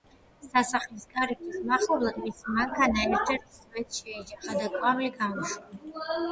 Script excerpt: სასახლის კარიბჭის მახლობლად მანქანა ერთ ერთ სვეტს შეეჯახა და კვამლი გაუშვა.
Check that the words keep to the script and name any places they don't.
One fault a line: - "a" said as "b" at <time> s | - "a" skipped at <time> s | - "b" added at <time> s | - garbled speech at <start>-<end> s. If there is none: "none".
- "მისი" added at 2.2 s